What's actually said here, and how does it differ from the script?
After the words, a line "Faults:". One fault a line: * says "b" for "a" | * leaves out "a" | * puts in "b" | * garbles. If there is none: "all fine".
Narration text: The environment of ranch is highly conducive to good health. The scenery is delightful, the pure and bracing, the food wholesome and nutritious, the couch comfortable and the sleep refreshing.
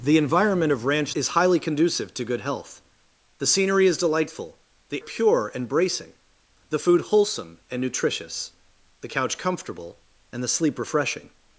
The environment of ranch is highly conducive to good health. The scenery is delightful, the pure and bracing, the food wholesome and nutritious, the couch comfortable and the sleep refreshing.
Faults:
all fine